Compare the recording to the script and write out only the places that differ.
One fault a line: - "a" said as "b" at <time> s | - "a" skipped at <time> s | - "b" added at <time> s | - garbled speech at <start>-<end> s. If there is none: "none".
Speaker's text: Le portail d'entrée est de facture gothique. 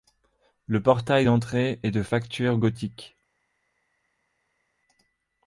none